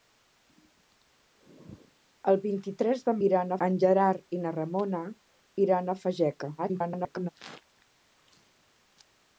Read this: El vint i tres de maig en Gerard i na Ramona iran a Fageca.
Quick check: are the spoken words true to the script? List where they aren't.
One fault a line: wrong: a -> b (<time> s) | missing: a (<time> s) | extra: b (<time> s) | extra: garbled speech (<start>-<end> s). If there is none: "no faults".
wrong: maig -> iran (3.3 s)
extra: garbled speech (6.6-7.3 s)